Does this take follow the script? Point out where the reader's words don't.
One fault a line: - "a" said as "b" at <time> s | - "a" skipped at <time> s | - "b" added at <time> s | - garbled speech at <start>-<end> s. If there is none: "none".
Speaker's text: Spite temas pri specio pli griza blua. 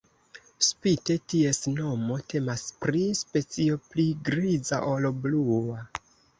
- "ties nomo" added at 1.3 s
- "ol" added at 5.0 s